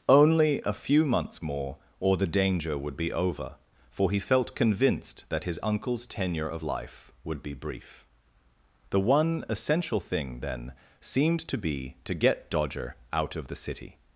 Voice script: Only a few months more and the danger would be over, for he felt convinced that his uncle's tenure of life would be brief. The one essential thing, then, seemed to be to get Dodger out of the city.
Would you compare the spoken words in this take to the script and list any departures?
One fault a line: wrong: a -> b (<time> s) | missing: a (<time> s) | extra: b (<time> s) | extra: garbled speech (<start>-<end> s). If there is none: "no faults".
wrong: and -> or (2.0 s)